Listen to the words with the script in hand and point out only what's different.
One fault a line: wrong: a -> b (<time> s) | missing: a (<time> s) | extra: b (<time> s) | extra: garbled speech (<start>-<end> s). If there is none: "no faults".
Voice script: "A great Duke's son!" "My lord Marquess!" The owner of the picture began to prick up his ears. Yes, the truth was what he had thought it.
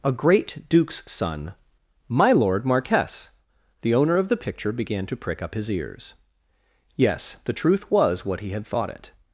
no faults